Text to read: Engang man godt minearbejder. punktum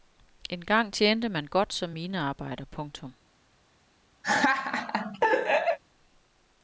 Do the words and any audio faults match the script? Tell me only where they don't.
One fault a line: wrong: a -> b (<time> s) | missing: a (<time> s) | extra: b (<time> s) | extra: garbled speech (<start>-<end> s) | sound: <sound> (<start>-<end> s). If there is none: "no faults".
extra: tjente (0.9 s)
extra: som (1.7 s)
sound: laugh (4.2-5.8 s)